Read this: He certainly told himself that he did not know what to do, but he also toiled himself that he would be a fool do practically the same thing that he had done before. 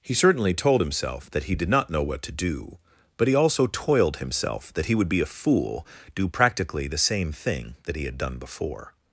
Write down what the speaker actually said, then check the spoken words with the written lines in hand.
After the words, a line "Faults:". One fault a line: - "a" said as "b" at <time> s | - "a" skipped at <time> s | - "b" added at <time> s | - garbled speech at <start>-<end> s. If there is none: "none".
He certainly told himself that he did not know what to do, but he also toiled himself that he would be a fool do practically the same thing that he had done before.
Faults:
none